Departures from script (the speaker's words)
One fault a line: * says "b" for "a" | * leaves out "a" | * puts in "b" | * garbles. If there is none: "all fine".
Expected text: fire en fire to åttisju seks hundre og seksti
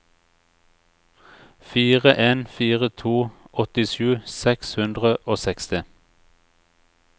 all fine